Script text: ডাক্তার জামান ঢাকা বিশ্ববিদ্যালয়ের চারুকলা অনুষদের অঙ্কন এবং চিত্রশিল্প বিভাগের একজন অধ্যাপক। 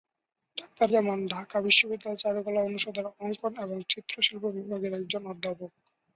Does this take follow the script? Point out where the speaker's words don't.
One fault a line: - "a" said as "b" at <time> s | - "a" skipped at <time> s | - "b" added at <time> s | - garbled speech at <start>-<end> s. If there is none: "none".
none